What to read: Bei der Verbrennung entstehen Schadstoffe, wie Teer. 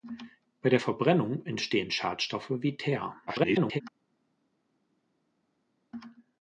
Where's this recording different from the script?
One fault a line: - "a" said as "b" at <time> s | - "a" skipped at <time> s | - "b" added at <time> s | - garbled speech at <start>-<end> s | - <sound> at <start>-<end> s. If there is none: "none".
- garbled speech at 3.3-3.8 s